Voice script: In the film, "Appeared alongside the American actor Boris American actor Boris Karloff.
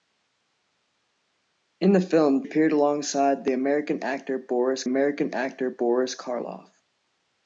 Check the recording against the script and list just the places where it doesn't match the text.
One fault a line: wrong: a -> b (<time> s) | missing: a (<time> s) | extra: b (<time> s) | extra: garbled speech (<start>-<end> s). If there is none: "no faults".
no faults